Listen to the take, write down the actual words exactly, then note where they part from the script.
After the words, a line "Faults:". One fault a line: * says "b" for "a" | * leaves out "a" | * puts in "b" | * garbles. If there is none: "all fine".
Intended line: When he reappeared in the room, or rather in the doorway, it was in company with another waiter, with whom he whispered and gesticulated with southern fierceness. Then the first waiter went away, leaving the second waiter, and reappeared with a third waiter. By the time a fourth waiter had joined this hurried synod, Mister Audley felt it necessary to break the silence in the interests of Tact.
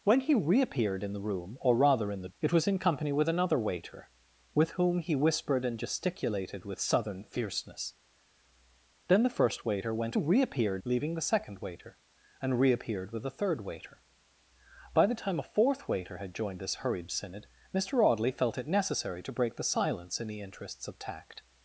When he reappeared in the room, or rather in the it was in company with another waiter, with whom he whispered and gesticulated with southern fierceness. Then the first waiter went reappeared, leaving the second waiter, and reappeared with a third waiter. By the time a fourth waiter had joined this hurried synod, Mister Audley felt it necessary to break the silence in the interests of Tact.
Faults:
* leaves out "doorway"
* says "reappeared" for "away"